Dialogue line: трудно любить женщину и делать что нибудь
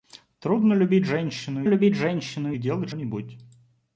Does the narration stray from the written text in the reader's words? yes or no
yes